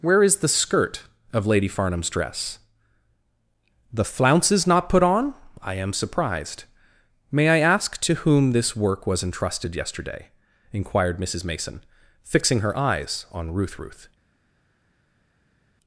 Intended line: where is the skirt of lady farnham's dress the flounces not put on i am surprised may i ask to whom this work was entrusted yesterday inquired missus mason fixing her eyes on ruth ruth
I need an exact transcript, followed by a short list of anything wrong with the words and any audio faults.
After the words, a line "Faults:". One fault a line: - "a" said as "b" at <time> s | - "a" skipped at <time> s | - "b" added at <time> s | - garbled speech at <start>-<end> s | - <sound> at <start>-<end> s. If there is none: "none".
where is the skirt of lady farnham's dress the flounces not put on i am surprised may i ask to whom this work was entrusted yesterday inquired missus mason fixing her eyes on ruth ruth
Faults:
none